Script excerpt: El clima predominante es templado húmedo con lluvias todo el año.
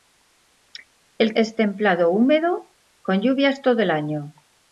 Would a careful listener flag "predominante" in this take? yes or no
yes